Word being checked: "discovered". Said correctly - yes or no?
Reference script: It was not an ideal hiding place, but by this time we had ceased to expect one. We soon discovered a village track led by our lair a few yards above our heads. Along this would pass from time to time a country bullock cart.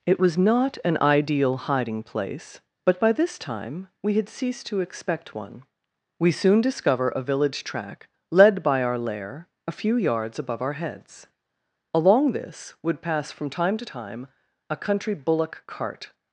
no